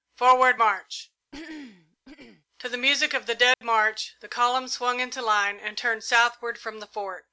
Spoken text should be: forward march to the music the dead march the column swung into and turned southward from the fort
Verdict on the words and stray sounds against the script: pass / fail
fail